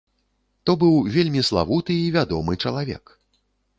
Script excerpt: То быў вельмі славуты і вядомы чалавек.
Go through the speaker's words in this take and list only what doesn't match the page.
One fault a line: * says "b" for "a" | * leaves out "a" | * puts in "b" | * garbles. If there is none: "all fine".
all fine